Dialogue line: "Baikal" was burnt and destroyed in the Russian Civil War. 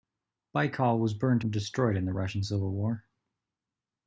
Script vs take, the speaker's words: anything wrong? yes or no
no